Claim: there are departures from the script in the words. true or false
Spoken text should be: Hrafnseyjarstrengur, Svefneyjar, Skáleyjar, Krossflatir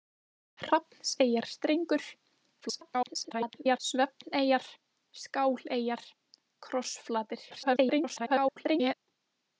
true